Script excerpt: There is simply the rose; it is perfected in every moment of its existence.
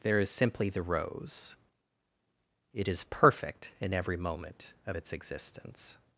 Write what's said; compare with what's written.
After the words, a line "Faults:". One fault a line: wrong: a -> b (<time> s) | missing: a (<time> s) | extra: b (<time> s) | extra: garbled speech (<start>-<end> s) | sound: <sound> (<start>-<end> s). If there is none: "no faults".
There is simply the rose; it is perfect in every moment of its existence.
Faults:
wrong: perfected -> perfect (3.1 s)